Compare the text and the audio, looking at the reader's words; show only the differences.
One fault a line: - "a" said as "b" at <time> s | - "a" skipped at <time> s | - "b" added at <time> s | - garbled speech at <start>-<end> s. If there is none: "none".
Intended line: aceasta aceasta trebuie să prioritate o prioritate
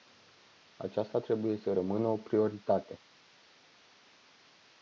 - "aceasta" skipped at 1.2 s
- "prioritate" said as "rămână" at 1.7 s